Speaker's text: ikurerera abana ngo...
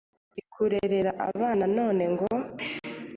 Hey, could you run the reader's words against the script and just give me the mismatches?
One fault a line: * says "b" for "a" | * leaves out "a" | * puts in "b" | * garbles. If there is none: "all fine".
* puts in "none"